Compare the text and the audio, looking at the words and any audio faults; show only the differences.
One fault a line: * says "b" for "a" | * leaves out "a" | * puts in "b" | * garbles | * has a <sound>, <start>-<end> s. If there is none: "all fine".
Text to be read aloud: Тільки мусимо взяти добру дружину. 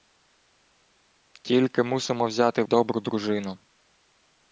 all fine